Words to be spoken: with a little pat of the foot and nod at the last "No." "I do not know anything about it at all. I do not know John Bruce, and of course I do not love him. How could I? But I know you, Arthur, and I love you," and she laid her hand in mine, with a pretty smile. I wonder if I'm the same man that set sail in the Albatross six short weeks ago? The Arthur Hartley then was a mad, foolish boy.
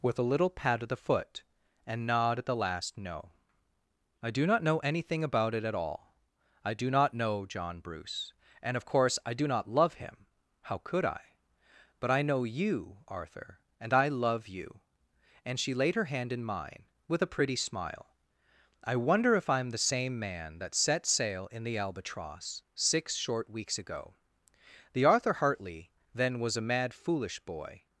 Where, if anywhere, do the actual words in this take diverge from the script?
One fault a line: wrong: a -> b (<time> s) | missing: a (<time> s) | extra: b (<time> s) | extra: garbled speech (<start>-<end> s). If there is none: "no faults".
no faults